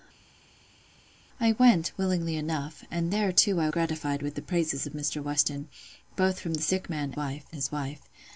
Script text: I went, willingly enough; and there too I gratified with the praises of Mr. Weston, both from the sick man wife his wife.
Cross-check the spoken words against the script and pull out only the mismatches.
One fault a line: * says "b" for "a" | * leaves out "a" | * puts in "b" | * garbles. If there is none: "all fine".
all fine